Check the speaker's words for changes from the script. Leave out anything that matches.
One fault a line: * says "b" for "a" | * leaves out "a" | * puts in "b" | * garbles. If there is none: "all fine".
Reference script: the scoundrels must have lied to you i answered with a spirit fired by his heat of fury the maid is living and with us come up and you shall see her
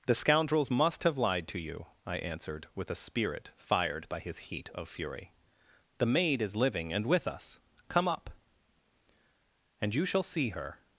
all fine